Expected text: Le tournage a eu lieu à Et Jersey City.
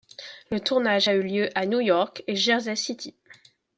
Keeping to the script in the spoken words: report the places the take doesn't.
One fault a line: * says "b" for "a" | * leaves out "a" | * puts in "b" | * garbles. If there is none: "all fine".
* puts in "New York"